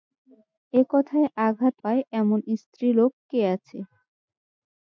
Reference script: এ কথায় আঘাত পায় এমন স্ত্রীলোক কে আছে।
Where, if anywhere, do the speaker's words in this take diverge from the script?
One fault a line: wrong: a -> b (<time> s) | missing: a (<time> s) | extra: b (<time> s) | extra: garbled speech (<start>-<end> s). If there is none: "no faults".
no faults